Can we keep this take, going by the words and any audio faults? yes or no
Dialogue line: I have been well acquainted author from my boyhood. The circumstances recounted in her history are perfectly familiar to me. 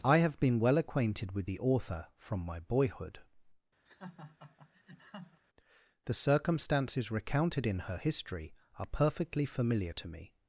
no